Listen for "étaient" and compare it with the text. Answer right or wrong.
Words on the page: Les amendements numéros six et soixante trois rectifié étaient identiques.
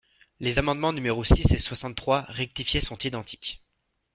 wrong